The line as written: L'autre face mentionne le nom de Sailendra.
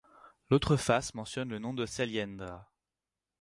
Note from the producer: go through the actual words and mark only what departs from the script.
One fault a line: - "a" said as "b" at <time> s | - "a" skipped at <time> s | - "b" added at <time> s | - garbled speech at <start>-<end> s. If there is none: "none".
none